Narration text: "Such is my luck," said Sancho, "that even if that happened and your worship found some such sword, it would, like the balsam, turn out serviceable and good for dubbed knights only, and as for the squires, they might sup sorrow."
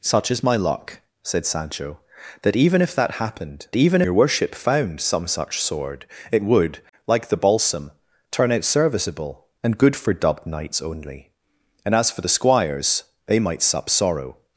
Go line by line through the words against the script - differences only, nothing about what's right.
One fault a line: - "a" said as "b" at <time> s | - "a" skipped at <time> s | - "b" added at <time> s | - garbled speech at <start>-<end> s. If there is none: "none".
- "and" said as "even" at 3.7 s